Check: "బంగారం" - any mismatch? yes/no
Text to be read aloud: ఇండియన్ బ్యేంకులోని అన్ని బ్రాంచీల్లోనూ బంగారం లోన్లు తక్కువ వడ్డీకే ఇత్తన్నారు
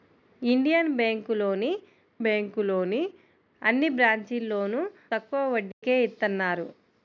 yes